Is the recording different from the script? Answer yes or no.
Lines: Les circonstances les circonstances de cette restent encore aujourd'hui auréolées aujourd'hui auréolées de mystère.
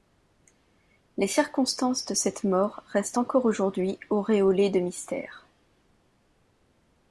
yes